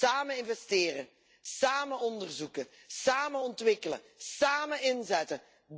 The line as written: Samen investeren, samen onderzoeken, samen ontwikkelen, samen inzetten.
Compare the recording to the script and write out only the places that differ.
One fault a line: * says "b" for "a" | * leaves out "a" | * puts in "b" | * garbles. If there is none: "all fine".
all fine